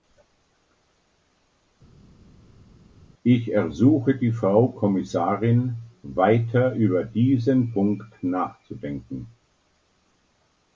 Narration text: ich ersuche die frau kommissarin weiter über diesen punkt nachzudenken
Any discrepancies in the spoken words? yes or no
no